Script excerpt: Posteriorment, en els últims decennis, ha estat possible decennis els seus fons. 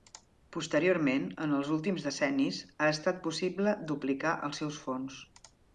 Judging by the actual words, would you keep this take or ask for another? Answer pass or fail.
fail